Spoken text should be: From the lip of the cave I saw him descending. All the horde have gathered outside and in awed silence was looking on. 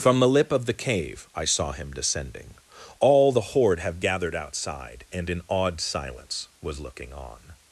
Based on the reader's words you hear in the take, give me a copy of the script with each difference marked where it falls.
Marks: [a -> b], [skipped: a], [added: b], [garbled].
From the lip of the cave I saw him descending. All the horde have gathered outside and in awed silence was looking on.